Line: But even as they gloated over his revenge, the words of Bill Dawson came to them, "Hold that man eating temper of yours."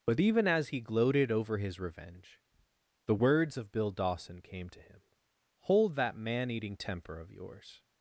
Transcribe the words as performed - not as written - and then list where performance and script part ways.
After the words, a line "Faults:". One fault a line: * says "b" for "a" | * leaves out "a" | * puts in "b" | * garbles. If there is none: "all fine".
But even as he gloated over his revenge, the words of Bill Dawson came to him, "Hold that man eating temper of yours."
Faults:
* says "he" for "they"
* says "him" for "them"